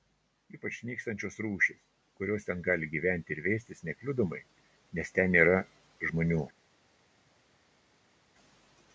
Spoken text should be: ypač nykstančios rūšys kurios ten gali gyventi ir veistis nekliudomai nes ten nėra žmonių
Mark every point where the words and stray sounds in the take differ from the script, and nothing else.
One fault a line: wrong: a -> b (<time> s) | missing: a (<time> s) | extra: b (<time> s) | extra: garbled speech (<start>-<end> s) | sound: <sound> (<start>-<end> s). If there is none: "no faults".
no faults